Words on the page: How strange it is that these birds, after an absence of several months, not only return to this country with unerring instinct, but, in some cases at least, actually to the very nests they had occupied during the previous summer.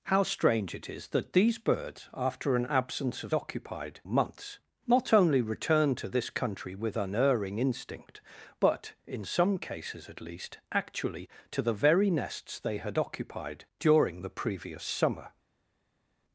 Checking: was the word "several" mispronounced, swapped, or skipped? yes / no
yes